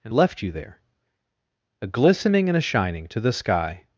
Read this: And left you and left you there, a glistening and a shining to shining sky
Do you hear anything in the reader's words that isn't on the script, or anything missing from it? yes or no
yes